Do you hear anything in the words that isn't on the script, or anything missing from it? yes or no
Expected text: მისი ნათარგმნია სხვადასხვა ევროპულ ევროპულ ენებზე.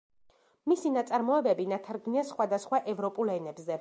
yes